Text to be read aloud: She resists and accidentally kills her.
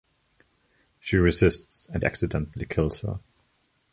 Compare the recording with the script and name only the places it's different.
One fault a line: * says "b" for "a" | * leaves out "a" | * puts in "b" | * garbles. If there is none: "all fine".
all fine